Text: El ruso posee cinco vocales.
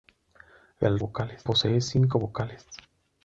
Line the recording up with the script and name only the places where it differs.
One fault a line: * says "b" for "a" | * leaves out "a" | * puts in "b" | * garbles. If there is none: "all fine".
* says "vocales" for "ruso"